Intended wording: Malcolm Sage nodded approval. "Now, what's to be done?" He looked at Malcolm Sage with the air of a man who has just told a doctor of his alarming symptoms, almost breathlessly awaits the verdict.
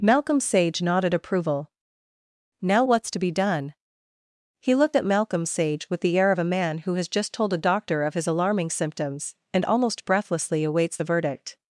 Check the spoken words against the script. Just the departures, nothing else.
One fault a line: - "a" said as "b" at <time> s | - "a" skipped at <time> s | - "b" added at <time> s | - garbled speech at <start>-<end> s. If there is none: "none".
- "and" added at 9.5 s